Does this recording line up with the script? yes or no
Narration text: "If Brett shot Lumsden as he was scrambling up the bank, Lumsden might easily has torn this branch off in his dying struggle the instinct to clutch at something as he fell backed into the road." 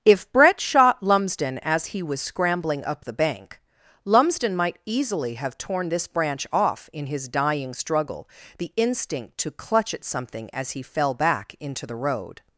no